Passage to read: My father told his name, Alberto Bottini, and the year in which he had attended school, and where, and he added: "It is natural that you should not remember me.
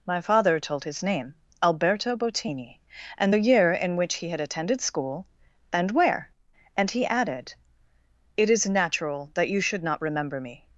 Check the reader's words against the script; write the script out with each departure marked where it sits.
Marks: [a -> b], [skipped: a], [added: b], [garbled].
My father told his name, Alberto Bottini, and the year in which he had attended school, and where, and he added: "It is natural that you should not remember me.